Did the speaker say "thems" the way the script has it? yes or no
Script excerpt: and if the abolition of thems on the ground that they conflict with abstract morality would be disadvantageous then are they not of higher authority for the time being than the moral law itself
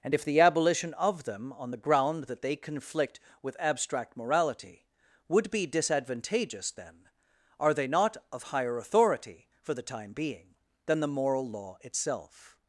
no